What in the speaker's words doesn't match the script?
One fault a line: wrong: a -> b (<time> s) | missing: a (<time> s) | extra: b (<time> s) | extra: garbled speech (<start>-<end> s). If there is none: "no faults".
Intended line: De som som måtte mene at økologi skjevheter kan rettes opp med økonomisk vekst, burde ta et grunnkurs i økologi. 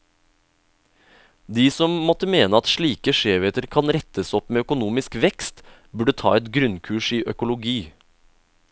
missing: som (1.9 s)
wrong: økologi -> slike (2.7 s)